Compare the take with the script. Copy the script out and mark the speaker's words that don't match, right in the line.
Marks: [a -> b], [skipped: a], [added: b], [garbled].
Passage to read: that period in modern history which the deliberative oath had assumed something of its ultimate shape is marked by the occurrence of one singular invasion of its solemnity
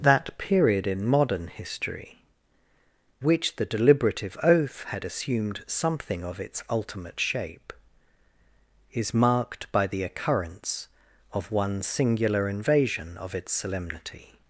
that period in modern history which the deliberative oath had assumed something of its ultimate shape is marked by the occurrence of one singular invasion of its solemnity